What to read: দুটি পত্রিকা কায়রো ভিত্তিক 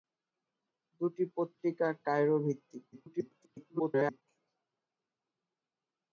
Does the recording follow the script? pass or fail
fail